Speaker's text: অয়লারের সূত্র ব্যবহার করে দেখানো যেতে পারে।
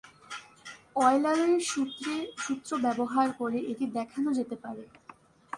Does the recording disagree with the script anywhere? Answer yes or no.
yes